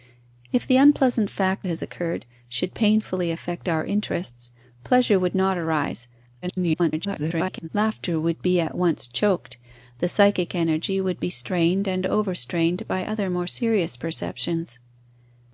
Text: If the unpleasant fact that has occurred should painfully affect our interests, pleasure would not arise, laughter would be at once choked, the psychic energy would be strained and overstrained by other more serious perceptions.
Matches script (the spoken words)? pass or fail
fail